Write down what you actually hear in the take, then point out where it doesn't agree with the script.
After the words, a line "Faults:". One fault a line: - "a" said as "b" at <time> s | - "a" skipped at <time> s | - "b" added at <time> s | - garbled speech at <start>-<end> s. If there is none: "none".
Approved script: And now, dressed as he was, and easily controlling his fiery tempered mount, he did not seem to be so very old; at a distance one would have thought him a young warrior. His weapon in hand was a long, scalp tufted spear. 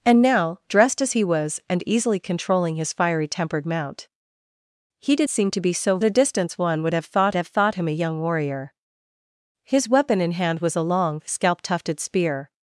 And now, dressed as he was, and easily controlling his fiery tempered mount, he did seem to be so a distance one would have thought have thought him a young warrior. His weapon in hand was a long, scalp tufted spear.
Faults:
- "not" skipped at 5.3 s
- "very old at" skipped at 6.0 s
- "have thought" added at 7.4 s